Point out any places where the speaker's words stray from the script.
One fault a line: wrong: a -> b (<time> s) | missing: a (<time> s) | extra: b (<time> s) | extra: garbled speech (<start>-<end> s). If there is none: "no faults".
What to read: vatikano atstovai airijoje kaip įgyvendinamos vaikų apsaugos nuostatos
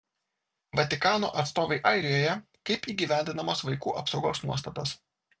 no faults